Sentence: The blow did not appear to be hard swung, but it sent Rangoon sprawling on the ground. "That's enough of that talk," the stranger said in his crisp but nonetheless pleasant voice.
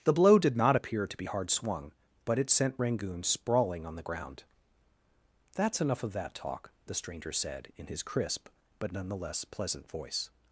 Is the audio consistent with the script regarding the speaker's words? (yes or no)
yes